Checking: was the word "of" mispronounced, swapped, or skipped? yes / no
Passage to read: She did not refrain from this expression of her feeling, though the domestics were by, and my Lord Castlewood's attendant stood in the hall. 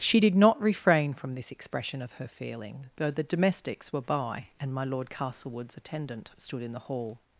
no